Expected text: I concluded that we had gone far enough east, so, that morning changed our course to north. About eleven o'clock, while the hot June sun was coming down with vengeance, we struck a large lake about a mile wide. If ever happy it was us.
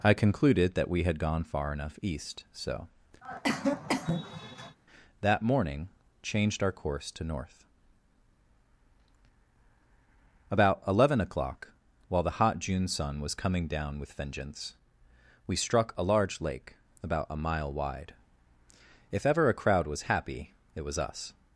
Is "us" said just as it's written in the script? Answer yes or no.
yes